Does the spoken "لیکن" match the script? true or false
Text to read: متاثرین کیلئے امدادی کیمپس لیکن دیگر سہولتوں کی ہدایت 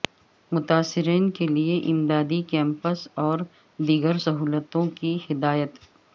false